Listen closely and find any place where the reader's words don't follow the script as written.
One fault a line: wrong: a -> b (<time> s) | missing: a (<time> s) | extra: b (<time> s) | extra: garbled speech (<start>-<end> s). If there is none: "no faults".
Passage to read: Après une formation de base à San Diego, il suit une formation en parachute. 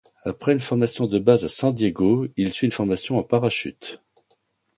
no faults